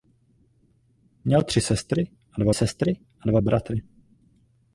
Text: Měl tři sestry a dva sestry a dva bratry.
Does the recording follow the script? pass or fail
pass